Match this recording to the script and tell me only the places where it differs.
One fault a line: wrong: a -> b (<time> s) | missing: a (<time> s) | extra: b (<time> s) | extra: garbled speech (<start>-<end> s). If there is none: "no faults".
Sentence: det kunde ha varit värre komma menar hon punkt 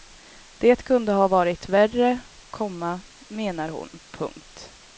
no faults